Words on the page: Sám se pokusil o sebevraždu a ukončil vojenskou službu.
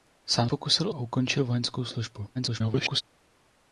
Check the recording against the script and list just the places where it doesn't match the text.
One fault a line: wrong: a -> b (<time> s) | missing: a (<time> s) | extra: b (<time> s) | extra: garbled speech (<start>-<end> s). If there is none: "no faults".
missing: se (0.5 s)
missing: sebevraždu (0.9 s)
extra: garbled speech (2.3-3.0 s)